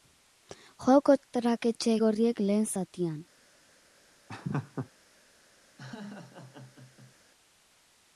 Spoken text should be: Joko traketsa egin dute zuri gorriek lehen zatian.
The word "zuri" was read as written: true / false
false